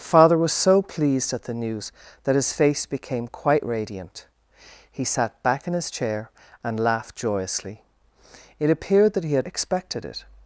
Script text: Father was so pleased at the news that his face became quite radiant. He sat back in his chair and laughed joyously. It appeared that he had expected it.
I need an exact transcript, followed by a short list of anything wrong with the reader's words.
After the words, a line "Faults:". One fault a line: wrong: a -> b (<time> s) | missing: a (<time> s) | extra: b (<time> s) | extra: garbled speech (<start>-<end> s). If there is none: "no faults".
Father was so pleased at the news that his face became quite radiant. He sat back in his chair and laughed joyously. It appeared that he had expected it.
Faults:
no faults